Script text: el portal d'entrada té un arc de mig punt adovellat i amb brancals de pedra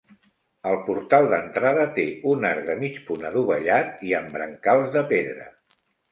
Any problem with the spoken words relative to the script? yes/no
no